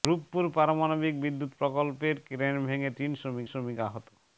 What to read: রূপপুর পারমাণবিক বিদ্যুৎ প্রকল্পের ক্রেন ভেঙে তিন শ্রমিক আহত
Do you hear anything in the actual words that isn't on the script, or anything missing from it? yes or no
yes